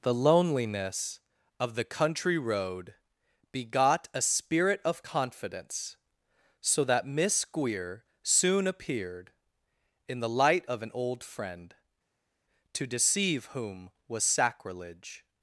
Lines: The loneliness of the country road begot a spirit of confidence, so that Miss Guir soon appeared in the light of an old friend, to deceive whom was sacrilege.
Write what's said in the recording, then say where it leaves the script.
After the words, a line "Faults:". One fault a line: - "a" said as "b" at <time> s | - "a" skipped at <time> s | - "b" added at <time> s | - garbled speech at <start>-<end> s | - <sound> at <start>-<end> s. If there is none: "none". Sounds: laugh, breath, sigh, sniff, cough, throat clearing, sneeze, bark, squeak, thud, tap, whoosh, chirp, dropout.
The loneliness of the country road begot a spirit of confidence, so that Miss Guir soon appeared in the light of an old friend, to deceive whom was sacrilege.
Faults:
none